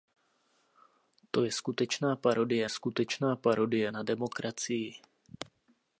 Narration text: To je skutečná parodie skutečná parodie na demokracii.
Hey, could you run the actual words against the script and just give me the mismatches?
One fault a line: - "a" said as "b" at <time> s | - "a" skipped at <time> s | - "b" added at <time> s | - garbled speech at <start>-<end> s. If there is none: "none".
none